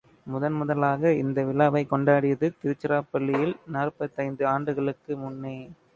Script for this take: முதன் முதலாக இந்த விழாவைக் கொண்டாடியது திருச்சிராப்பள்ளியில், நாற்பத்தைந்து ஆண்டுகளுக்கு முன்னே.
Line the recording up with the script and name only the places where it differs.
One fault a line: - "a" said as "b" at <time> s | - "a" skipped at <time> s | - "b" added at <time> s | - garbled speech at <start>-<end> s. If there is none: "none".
none